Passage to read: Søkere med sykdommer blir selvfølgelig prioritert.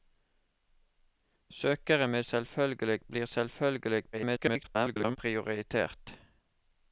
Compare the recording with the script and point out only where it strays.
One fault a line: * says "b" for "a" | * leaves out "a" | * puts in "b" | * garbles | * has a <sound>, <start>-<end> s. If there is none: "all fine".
* says "selvfølgelig" for "sykdommer"
* garbles